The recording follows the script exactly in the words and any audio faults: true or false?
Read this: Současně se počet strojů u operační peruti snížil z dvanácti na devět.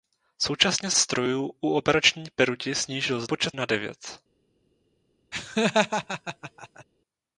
false